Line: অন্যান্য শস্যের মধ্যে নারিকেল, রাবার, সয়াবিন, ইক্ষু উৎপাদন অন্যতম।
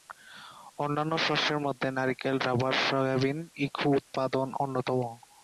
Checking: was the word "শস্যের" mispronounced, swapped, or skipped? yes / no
no